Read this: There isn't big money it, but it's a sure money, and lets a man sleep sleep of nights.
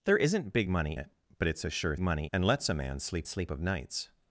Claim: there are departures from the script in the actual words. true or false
false